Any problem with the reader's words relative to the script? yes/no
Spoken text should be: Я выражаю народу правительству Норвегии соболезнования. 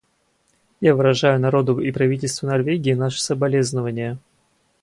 yes